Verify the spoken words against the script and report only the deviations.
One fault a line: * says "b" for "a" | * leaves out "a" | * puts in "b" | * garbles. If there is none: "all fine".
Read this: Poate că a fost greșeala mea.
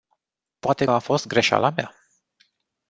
* leaves out "că"